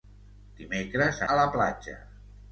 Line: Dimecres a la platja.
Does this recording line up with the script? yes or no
yes